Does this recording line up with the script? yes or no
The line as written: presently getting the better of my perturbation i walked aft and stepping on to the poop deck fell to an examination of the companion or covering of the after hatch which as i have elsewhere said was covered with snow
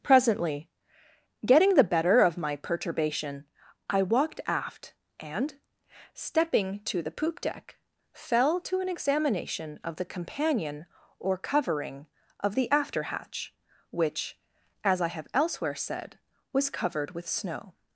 no